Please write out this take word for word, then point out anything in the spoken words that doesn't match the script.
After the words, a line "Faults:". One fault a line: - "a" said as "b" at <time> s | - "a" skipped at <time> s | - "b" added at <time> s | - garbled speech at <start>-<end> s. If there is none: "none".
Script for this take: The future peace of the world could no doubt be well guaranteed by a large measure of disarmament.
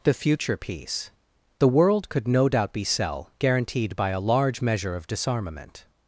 The future peace the world could no doubt be cell guaranteed by a large measure of disarmament.
Faults:
- "of" skipped at 1.1 s
- "well" said as "cell" at 2.8 s